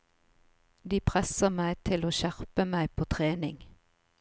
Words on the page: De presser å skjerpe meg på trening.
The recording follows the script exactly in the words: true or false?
false